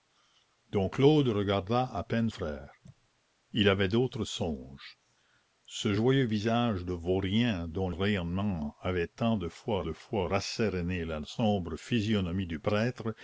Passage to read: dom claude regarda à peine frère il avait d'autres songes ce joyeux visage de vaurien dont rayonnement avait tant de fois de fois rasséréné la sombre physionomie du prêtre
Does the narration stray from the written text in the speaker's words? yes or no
no